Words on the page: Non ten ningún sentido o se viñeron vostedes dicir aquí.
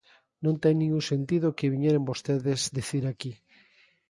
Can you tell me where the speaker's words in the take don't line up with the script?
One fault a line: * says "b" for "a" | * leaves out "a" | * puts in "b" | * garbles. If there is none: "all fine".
* says "que" for "se"